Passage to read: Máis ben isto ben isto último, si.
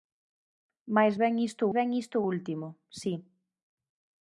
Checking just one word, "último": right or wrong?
right